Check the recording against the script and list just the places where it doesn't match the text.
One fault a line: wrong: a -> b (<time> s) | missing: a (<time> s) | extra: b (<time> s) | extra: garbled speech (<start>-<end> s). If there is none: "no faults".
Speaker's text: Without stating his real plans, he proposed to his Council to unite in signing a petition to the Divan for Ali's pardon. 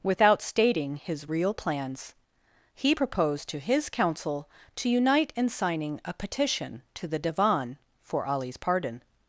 no faults